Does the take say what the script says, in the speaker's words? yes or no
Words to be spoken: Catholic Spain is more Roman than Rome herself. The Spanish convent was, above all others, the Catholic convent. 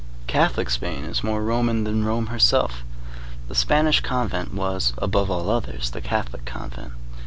yes